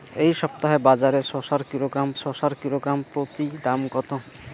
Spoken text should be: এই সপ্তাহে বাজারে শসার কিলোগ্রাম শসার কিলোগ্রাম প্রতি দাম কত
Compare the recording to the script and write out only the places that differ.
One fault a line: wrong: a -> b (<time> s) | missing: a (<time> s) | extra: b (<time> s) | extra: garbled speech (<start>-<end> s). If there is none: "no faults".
no faults